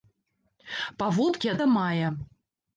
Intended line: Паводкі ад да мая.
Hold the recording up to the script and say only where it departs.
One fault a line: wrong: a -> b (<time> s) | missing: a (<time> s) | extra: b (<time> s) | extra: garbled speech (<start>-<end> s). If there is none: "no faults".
no faults